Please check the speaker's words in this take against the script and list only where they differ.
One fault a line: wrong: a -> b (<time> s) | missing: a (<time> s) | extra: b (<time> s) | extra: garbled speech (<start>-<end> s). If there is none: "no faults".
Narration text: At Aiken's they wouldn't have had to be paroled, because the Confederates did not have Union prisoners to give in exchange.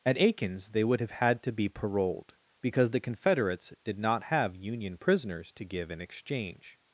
wrong: wouldn't -> would (0.8 s)